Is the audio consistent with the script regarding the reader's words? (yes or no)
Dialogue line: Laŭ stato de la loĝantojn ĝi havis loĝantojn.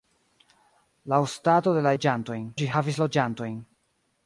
yes